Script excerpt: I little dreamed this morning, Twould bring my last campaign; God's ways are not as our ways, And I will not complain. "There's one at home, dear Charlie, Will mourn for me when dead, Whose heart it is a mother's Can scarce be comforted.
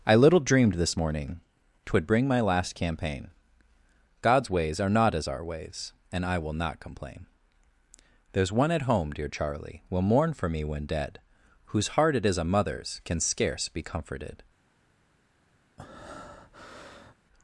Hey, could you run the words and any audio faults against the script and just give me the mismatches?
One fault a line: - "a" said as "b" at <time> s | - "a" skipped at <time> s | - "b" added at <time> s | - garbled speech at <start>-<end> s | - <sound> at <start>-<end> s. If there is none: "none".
- breath at 15.8-17.2 s